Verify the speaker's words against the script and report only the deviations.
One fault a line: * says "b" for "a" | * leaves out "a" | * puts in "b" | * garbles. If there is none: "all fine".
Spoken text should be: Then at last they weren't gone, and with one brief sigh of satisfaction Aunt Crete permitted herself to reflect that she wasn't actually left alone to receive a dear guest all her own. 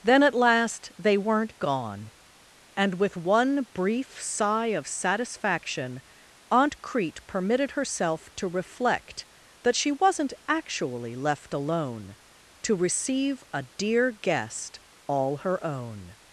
all fine